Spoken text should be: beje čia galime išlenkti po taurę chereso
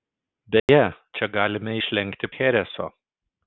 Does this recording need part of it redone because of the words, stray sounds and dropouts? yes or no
yes